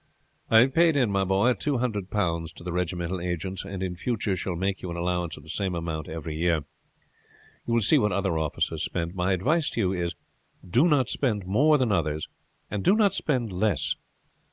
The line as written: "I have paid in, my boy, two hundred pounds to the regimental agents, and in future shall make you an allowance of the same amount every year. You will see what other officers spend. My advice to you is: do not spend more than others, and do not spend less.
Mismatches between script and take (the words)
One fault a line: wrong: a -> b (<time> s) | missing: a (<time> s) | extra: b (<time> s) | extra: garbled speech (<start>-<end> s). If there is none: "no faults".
no faults